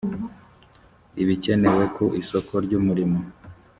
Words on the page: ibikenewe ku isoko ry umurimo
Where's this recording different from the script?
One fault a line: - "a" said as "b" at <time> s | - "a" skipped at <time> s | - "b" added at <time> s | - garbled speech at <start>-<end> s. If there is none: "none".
none